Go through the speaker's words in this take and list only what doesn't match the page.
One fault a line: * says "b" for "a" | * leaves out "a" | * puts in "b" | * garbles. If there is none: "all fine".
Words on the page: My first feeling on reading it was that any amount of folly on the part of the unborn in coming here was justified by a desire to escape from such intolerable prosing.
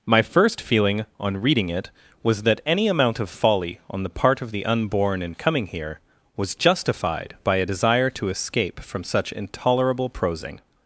all fine